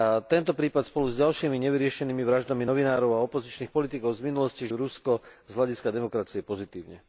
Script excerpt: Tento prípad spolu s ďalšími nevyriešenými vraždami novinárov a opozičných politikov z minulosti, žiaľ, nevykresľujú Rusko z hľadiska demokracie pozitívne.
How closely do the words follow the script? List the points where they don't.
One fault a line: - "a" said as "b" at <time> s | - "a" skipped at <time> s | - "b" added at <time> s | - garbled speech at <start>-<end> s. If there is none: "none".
- "žiaľ nevykresľujú" skipped at 4.7 s